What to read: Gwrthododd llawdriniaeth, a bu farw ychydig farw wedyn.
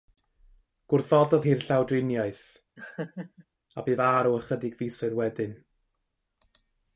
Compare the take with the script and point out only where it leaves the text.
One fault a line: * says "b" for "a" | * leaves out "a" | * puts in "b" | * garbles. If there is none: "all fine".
* puts in "hi'r"
* says "fisoedd" for "farw"